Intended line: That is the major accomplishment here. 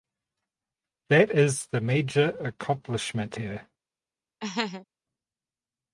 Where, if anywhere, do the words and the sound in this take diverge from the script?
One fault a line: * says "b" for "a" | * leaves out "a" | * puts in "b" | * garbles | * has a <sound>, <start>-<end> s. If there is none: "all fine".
* has a laugh, 4.4-4.9 s